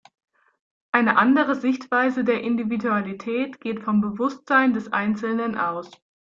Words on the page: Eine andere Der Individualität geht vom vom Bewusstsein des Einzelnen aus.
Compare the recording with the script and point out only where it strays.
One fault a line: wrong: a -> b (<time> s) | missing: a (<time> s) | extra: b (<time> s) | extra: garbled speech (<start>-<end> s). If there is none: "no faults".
extra: Sichtweise (1.5 s)
missing: vom (4.0 s)